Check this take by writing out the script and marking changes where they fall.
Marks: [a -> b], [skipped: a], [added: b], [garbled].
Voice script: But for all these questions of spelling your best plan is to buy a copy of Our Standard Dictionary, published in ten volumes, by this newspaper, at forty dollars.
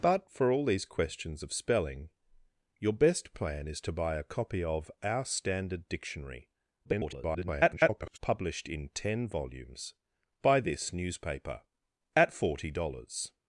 But for all these questions of spelling your best plan is to buy a copy of Our Standard Dictionary, [garbled] published in ten volumes, by this newspaper, at forty dollars.